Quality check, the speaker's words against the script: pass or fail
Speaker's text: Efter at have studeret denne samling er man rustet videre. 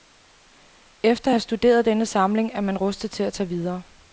fail